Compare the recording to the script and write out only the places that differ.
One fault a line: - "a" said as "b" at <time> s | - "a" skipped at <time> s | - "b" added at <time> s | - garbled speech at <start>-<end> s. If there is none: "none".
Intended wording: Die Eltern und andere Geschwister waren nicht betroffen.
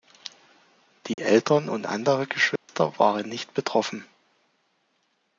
none